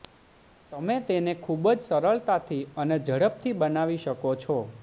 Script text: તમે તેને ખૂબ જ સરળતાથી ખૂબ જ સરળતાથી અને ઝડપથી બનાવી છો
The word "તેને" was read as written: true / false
true